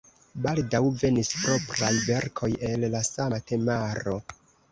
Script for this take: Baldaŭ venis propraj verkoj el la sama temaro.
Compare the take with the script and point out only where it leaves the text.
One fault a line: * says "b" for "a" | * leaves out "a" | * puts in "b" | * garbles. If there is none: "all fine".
all fine